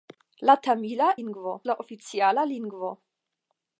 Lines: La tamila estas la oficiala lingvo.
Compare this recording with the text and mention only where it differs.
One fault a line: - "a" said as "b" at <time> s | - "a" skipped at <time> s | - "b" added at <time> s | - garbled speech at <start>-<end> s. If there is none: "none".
- "estas" said as "lingvo" at 1.2 s